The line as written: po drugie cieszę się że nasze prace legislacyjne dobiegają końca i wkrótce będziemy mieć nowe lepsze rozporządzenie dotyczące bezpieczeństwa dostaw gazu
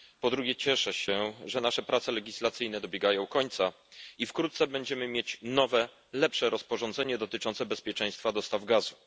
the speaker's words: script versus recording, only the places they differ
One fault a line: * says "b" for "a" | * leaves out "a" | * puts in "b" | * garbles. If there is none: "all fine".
all fine